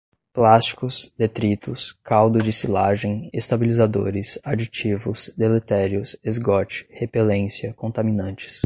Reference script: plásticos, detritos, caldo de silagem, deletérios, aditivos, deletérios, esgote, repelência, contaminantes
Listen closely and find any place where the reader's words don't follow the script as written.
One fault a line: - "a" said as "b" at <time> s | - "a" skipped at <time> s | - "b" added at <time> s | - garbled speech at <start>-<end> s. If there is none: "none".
- "deletérios" said as "estabilizadores" at 3.3 s